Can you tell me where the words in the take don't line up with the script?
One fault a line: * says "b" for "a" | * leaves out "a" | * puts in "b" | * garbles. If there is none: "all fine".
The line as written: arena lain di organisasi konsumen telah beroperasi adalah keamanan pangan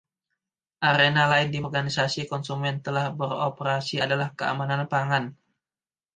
all fine